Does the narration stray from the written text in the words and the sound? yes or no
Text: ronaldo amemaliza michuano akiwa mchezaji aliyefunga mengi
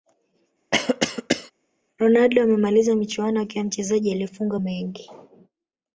yes